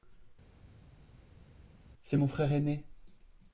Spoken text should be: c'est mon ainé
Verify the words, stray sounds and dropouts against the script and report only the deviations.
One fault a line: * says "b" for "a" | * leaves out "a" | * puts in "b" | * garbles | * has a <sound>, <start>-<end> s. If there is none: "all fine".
* puts in "frère"